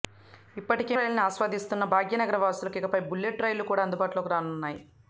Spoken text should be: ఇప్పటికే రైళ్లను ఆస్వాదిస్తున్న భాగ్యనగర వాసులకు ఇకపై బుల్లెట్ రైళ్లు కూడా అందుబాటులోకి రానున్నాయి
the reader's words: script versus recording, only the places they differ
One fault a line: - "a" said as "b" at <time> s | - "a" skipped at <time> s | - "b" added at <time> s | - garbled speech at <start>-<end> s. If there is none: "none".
none